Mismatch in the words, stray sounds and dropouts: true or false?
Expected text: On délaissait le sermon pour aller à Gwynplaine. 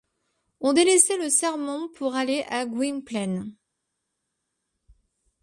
false